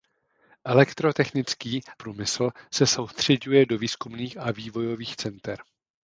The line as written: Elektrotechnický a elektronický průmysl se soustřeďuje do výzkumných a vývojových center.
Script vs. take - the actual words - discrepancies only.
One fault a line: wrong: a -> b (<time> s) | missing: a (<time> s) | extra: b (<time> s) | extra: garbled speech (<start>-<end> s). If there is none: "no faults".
missing: a elektronický (1.8 s)